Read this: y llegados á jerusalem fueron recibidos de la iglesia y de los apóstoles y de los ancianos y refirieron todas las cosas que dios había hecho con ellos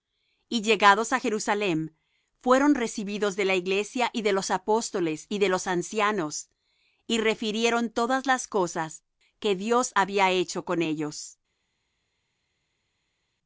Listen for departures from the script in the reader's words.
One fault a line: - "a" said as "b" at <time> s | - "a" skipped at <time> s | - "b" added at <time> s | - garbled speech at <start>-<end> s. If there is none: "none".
none